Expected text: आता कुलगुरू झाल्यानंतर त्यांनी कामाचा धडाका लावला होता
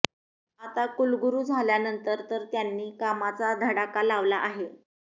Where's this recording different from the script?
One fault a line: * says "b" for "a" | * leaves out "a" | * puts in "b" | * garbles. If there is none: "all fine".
* puts in "तर"
* says "आहे" for "होता"